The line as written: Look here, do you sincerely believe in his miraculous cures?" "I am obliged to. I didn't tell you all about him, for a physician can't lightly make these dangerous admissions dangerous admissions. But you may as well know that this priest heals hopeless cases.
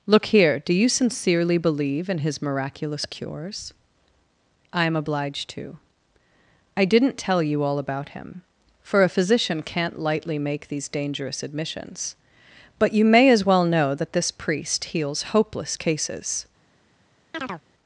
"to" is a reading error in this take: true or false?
false